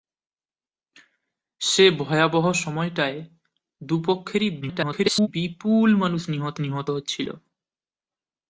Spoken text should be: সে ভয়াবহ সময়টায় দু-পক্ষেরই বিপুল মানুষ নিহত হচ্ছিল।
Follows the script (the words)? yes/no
no